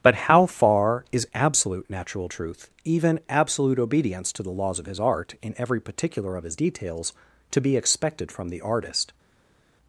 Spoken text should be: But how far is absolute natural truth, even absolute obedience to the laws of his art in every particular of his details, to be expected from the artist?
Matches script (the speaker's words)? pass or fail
pass